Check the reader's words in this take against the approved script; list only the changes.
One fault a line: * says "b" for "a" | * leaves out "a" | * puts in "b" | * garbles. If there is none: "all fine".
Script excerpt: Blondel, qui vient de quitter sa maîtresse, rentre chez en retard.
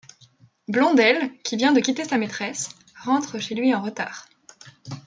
* puts in "lui"